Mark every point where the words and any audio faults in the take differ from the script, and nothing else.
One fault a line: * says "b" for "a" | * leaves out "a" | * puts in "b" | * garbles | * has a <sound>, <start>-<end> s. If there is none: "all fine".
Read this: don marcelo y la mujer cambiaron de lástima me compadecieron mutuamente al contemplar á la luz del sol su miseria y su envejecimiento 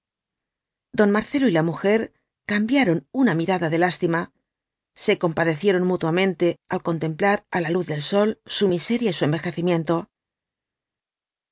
* puts in "una mirada"
* says "se" for "me"